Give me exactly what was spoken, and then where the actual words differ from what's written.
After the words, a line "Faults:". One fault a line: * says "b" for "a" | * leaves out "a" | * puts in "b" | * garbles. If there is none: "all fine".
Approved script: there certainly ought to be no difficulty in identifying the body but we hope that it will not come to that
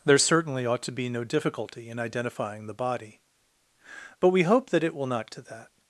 there certainly ought to be no difficulty in identifying the body but we hope that it will not to that
Faults:
* leaves out "come"